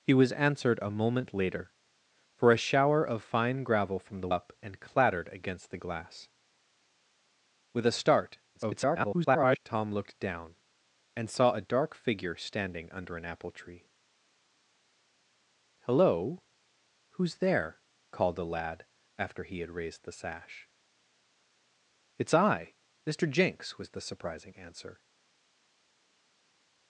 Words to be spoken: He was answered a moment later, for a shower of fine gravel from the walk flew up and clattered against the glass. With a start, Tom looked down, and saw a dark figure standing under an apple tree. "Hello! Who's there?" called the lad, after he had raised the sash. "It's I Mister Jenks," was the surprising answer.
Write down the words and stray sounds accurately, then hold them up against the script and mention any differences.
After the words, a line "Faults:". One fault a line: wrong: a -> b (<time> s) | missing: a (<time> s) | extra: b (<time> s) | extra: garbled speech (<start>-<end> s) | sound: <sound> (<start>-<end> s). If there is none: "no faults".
He was answered a moment later, for a shower of fine gravel from the up and clattered against the glass. With a start, [garbled] Tom looked down, and saw a dark figure standing under an apple tree. "Hello! Who's there?" called the lad, after he had raised the sash. "It's I Mister Jenks," was the surprising answer.
Faults:
missing: walk flew (4.3 s)
extra: garbled speech (8.5-9.6 s)